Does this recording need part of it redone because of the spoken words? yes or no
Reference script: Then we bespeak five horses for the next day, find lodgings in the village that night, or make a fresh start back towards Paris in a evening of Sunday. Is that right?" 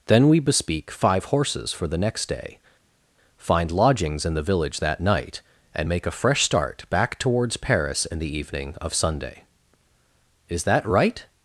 yes